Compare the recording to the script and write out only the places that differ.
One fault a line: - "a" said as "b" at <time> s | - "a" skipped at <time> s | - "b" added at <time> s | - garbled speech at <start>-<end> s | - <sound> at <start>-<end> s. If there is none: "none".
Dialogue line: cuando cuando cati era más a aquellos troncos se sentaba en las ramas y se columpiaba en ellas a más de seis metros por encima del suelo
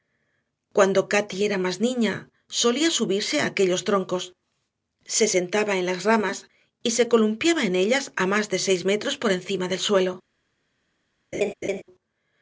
- "cuando" skipped at 1.1 s
- "niña solía subirse" added at 1.9 s
- laugh at 11.3-11.8 s